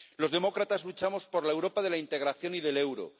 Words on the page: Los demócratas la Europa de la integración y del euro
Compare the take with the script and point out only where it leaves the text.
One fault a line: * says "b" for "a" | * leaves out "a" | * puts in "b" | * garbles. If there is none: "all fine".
* puts in "luchamos por"